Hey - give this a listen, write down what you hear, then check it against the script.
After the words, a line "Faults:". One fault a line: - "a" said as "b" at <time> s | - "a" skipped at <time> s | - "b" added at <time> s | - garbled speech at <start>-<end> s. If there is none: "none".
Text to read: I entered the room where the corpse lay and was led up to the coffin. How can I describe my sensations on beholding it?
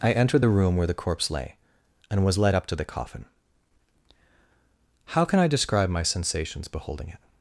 I entered the room where the corpse lay and was led up to the coffin. How can I describe my sensations beholding it?
Faults:
- "on" skipped at 6.7 s